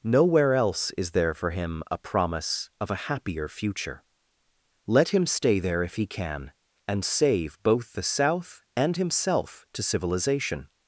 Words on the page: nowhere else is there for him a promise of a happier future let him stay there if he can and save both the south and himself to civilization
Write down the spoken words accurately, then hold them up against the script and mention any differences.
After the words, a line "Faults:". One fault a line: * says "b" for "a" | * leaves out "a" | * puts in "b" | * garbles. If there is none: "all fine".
nowhere else is there for him a promise of a happier future let him stay there if he can and save both the south and himself to civilization
Faults:
all fine